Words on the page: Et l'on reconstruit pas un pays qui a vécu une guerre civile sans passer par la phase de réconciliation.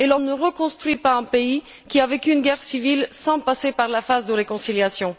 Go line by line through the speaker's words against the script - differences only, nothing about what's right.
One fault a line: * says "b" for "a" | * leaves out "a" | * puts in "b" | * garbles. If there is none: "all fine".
* puts in "ne"